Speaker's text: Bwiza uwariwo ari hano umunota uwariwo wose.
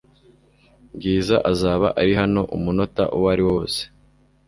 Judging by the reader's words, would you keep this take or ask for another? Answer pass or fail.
fail